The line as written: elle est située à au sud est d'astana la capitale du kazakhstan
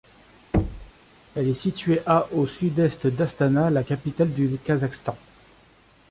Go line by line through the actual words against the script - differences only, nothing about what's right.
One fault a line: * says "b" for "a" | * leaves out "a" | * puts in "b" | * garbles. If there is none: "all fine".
all fine